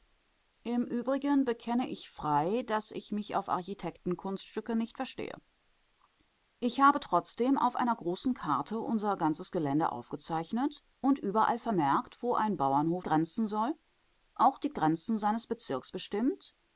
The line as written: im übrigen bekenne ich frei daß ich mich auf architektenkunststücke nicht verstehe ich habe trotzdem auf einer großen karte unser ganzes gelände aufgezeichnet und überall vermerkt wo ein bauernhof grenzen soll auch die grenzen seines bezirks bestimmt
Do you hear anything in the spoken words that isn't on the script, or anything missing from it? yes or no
no